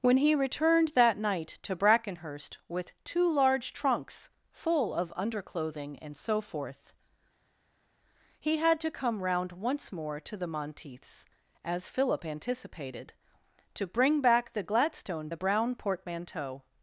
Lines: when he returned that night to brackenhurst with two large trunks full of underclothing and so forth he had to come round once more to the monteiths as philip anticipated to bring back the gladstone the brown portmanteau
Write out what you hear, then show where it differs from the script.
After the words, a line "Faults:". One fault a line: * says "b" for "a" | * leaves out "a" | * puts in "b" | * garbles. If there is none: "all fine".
when he returned that night to brackenhurst with two large trunks full of underclothing and so forth he had to come round once more to the monteiths as philip anticipated to bring back the gladstone the brown portmanteau
Faults:
all fine